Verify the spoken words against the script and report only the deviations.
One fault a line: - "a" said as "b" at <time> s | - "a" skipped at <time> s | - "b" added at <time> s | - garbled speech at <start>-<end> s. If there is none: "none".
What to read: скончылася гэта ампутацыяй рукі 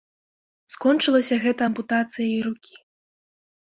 none